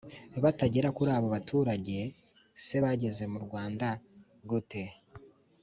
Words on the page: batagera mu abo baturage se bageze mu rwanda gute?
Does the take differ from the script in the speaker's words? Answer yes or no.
yes